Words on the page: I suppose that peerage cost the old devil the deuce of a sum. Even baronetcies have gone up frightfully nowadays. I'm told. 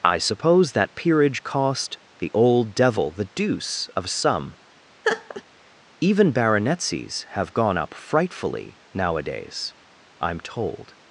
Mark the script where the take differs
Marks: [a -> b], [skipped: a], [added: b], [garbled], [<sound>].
I suppose that peerage cost the old devil the deuce of [a sum. -> some] [laugh] Even baronetcies have gone up frightfully nowadays. I'm told.